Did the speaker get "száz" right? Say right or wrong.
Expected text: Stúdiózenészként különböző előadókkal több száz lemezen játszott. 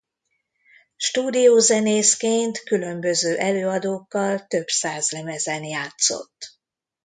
right